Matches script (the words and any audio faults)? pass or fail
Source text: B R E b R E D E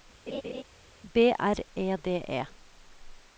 fail